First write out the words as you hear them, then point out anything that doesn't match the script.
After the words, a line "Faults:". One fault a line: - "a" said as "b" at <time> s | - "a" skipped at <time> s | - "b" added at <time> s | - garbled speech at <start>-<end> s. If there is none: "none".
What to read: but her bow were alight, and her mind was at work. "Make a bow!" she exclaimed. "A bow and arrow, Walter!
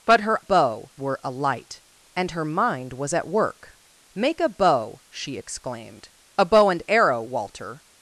but her bow were alight, and her mind was at work. "Make a bow!" she exclaimed. "A bow and arrow, Walter!
Faults:
none